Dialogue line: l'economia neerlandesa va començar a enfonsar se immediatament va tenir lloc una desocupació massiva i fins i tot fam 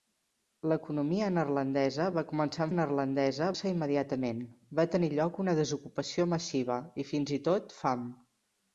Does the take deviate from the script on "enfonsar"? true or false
true